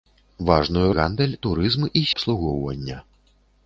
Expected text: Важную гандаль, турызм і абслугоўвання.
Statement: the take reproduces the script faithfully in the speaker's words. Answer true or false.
true